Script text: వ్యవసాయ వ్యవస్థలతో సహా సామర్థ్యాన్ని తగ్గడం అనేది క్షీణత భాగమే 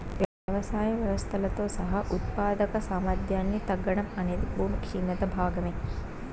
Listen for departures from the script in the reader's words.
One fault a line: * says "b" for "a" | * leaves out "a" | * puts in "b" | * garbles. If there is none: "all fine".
* puts in "ఉత్పాదక"
* puts in "భూమి"